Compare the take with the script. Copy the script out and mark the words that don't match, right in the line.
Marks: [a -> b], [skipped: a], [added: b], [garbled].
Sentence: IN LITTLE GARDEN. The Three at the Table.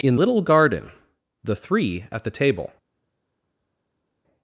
IN LITTLE GARDEN. The Three at the Table.